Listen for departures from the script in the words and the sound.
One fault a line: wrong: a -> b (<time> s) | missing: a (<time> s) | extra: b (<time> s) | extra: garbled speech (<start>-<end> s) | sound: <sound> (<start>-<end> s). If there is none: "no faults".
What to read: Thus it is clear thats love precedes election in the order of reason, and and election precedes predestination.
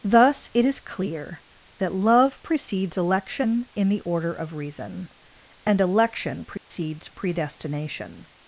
wrong: thats -> that (1.8 s)
missing: and (5.8 s)
sound: dropout (6.6-6.7 s)